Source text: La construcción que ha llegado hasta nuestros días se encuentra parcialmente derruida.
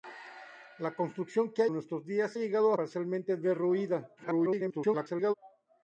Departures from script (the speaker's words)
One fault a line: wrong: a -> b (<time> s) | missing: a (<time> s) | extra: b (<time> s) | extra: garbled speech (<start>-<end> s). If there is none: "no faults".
missing: llegado hasta (1.7 s)
wrong: encuentra -> llegado (2.3 s)
extra: garbled speech (4.2-5.3 s)